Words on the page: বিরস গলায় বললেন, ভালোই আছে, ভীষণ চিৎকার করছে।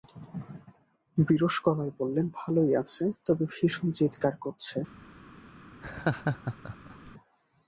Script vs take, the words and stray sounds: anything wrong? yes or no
yes